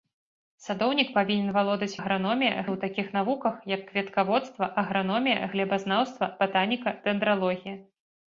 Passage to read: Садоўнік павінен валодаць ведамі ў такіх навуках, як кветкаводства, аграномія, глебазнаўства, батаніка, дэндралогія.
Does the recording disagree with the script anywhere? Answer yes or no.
yes